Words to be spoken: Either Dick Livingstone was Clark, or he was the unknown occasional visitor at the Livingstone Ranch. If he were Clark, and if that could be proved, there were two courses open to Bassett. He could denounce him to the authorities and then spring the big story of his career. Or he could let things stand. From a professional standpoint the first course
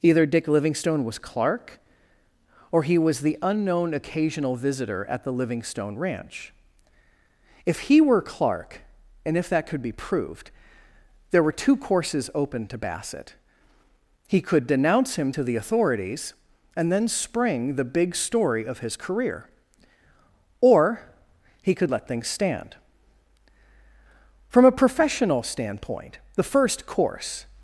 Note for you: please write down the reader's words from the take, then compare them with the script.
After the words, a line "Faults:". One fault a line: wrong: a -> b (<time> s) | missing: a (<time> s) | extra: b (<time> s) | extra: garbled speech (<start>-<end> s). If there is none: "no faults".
Either Dick Livingstone was Clark, or he was the unknown occasional visitor at the Livingstone Ranch. If he were Clark, and if that could be proved, there were two courses open to Bassett. He could denounce him to the authorities and then spring the big story of his career. Or he could let things stand. From a professional standpoint the first course
Faults:
no faults